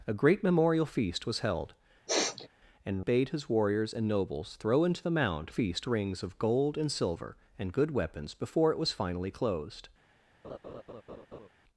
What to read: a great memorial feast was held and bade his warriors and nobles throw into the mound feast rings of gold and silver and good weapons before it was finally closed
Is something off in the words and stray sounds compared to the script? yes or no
yes